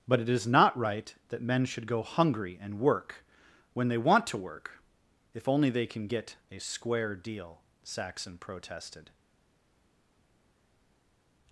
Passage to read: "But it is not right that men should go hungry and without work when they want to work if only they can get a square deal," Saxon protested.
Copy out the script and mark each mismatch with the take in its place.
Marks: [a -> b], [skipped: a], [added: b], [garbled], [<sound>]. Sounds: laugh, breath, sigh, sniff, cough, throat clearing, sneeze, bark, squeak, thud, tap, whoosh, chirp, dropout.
"But it is not right that men should go hungry and [skipped: without] work when they want to work if only they can get a square deal," Saxon protested.